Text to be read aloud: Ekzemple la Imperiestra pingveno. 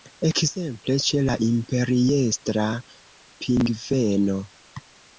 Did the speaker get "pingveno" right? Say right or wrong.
right